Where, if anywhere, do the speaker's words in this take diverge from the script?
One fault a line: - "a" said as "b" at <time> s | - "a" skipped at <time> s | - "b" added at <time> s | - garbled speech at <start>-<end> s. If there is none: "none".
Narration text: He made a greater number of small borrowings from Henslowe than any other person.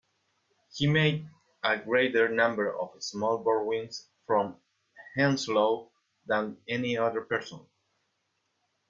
none